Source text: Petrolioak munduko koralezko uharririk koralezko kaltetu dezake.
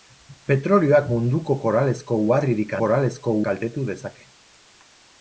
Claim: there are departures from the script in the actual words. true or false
false